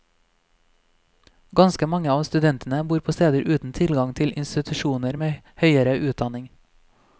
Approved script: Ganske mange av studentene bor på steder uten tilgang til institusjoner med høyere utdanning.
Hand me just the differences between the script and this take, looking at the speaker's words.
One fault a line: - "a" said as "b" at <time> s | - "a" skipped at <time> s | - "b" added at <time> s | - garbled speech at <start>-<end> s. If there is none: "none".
none